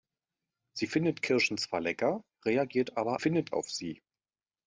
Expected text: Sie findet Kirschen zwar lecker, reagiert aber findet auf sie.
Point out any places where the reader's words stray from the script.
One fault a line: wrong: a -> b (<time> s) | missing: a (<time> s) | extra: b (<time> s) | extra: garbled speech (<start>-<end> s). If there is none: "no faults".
no faults